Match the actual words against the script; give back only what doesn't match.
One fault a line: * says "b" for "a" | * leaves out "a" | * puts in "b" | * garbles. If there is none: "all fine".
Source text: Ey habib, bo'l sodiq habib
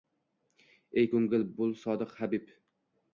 * says "ko'ngil" for "habib"